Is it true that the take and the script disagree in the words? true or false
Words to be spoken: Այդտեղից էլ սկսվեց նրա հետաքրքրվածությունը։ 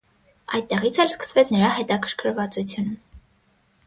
false